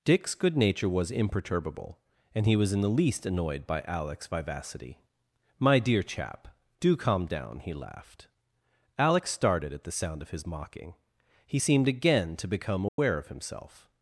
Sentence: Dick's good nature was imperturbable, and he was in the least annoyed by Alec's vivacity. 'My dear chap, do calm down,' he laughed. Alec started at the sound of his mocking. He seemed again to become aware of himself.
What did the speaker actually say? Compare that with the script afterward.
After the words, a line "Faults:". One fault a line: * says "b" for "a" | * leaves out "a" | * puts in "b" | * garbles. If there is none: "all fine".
Dick's good nature was imperturbable, and he was in the least annoyed by Alec's vivacity. 'My dear chap, do calm down,' he laughed. Alec started at the sound of his mocking. He seemed again to become aware of himself.
Faults:
all fine